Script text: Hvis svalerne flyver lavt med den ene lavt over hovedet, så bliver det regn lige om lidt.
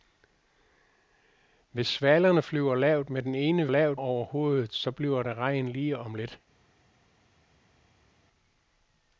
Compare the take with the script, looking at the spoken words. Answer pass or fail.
pass